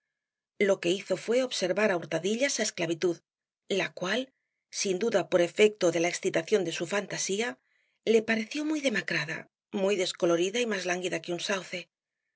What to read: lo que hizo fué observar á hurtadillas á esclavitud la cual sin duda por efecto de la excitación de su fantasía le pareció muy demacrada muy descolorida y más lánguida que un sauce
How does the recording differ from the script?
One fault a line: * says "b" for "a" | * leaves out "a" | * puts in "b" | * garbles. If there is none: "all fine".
all fine